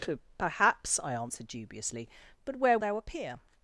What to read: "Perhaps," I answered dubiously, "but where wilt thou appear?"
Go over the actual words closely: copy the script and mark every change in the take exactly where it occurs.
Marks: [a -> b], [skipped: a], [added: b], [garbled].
"Perhaps," I answered dubiously, "but where [skipped: wilt] thou appear?"